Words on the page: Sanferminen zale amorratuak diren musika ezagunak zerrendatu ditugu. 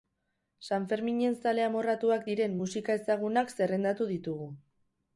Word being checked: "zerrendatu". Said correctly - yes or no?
yes